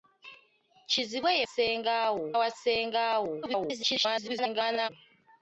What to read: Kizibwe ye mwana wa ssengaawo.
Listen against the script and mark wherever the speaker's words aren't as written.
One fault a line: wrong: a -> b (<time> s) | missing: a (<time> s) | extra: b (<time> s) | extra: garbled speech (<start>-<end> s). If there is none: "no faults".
wrong: mwana -> ssengaawo (1.4 s)
extra: garbled speech (3.4-4.9 s)